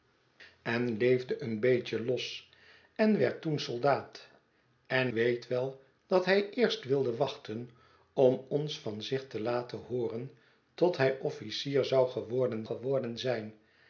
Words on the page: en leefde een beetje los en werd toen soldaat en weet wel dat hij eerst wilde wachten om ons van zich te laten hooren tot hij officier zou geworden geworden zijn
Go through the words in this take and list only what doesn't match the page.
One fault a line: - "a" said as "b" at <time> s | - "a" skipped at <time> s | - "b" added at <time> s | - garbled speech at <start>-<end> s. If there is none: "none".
none